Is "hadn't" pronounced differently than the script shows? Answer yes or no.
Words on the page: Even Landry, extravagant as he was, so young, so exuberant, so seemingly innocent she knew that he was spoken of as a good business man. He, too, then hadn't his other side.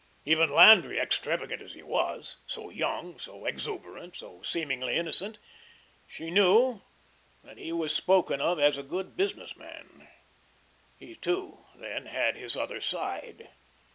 yes